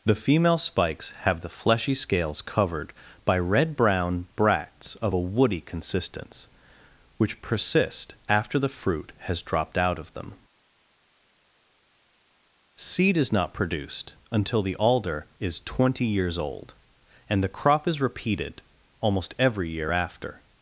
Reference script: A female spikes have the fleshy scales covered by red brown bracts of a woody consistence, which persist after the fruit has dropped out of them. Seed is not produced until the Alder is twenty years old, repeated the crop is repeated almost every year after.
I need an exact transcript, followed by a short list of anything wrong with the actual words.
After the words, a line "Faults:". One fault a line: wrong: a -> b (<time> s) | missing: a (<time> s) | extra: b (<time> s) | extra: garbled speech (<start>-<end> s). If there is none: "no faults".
The female spikes have the fleshy scales covered by red brown bracts of a woody consistence, which persist after the fruit has dropped out of them. Seed is not produced until the Alder is twenty years old, and the crop is repeated almost every year after.
Faults:
wrong: A -> The (0.0 s)
wrong: repeated -> and (17.3 s)